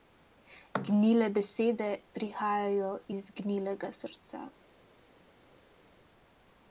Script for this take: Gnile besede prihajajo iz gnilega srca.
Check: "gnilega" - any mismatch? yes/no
no